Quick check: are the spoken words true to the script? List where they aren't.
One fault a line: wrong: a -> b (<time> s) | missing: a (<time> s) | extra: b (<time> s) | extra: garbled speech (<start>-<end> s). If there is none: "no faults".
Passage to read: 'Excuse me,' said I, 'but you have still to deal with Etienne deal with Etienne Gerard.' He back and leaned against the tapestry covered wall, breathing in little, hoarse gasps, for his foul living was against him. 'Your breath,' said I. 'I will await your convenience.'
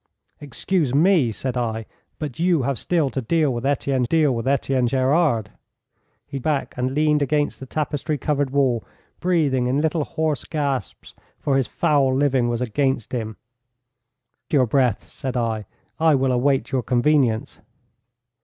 no faults